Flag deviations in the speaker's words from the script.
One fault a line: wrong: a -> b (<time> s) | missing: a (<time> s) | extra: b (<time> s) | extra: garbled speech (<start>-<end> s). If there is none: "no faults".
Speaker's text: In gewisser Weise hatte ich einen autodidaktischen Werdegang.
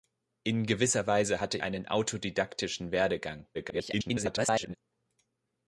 missing: ich (1.6 s)
extra: garbled speech (3.5-4.8 s)